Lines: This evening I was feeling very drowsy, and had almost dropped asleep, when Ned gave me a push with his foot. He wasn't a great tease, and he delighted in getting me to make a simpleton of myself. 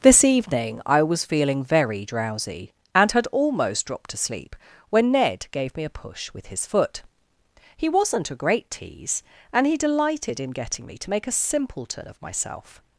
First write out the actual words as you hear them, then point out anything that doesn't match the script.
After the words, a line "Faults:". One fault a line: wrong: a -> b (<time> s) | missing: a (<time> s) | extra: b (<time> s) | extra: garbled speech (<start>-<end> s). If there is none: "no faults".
This evening I was feeling very drowsy, and had almost dropped asleep, when Ned gave me a push with his foot. He wasn't a great tease, and he delighted in getting me to make a simpleton of myself.
Faults:
no faults